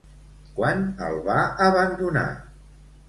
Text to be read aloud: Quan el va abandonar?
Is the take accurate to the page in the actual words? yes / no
yes